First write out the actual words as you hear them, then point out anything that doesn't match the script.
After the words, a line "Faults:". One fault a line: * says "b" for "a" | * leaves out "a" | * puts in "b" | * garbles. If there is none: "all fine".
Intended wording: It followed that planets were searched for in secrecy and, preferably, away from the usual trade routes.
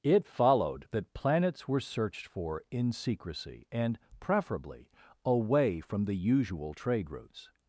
It followed that planets were searched for in secrecy and, preferably, away from the usual trade routes.
Faults:
all fine